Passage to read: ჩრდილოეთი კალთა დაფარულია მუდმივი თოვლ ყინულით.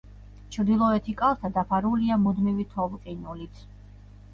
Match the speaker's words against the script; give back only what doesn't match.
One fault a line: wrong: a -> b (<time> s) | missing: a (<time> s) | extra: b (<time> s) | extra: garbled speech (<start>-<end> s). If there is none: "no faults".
no faults